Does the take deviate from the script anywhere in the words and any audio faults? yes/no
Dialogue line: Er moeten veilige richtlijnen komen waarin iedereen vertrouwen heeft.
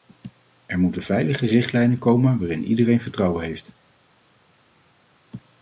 no